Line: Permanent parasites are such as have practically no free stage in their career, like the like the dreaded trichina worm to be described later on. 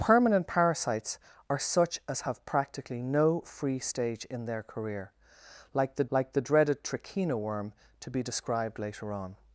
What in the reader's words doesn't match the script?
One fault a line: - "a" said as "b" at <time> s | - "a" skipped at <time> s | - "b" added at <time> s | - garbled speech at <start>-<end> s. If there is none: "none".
none